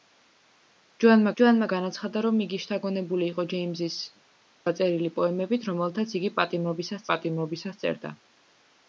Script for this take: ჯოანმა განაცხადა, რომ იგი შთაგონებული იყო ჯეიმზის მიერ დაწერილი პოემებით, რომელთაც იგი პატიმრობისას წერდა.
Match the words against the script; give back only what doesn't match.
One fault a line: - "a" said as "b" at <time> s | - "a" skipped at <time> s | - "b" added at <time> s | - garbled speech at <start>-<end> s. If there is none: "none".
- "ჯოანმა" added at 1.4 s
- "მიერ" skipped at 4.0 s
- "პატიმრობისას" added at 7.1 s